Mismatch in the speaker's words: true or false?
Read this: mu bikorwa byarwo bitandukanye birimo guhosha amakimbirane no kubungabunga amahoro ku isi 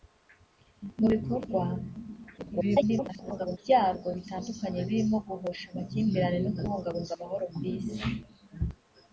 true